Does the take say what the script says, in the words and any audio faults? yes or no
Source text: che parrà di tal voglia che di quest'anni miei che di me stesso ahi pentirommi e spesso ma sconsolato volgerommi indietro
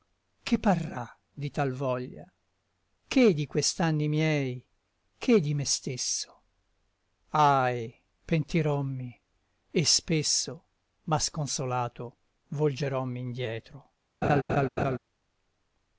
no